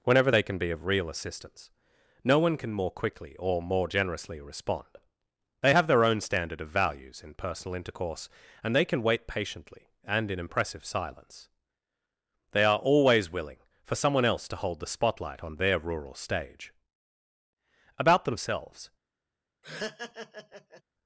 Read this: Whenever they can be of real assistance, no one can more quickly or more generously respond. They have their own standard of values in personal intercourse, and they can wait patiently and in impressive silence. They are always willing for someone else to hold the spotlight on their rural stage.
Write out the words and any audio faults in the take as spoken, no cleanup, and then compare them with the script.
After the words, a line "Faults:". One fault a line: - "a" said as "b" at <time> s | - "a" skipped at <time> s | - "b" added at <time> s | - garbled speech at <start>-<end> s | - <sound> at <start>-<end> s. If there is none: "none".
Whenever they can be of real assistance, no one can more quickly or more generously respond. They have their own standard of values in personal intercourse, and they can wait patiently and in impressive silence. They are always willing for someone else to hold the spotlight on their rural stage. About themselves
Faults:
- "About themselves" added at 18.0 s
- laugh at 19.6-20.8 s